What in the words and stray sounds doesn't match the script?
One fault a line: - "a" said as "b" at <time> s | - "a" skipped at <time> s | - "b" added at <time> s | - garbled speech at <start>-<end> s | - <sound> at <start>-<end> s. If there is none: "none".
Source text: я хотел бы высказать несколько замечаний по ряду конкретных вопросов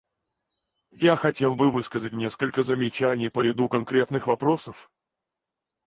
none